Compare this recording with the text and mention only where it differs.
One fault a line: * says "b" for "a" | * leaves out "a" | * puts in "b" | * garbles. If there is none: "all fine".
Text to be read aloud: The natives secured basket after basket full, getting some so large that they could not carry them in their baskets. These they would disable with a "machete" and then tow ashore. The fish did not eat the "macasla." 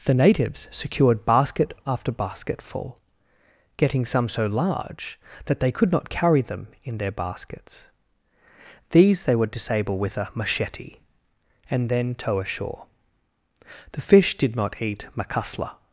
* leaves out "the"